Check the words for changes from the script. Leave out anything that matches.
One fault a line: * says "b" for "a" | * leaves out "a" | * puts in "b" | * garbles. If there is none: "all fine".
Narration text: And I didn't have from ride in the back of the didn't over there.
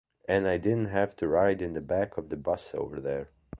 * says "to" for "from"
* says "bus" for "didn't"